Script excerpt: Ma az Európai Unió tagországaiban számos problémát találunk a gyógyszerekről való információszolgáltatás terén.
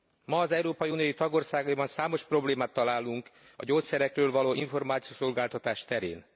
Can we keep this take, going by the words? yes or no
yes